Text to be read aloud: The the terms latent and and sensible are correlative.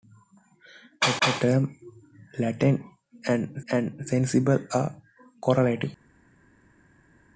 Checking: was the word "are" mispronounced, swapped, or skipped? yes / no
no